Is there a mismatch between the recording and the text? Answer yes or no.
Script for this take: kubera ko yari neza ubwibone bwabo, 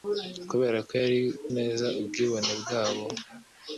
no